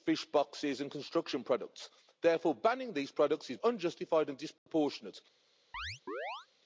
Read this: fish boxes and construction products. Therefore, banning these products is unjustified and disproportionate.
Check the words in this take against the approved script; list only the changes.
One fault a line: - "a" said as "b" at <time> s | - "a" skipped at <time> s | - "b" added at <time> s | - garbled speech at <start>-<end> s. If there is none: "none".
none